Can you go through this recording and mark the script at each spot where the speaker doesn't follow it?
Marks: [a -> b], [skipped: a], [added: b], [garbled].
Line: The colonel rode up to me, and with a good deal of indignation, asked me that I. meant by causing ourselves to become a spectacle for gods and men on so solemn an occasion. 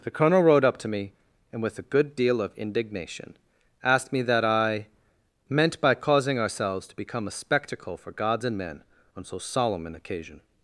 The colonel rode up to me, and with a good deal of indignation, asked me that I. meant by causing ourselves to become a spectacle for gods and men on so solemn an occasion.